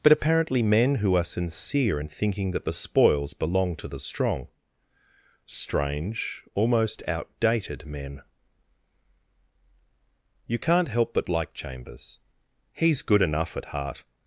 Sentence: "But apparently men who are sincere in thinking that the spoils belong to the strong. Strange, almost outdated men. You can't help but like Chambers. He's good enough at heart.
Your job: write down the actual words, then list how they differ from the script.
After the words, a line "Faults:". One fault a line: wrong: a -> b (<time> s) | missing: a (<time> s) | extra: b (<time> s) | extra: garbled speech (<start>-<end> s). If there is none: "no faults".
"But apparently men who are sincere in thinking that the spoils belong to the strong. Strange, almost outdated men. You can't help but like Chambers. He's good enough at heart.
Faults:
no faults